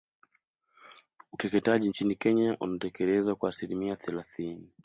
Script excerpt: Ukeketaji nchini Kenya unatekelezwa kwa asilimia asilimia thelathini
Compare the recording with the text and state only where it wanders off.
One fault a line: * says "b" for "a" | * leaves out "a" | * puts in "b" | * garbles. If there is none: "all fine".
* leaves out "asilimia"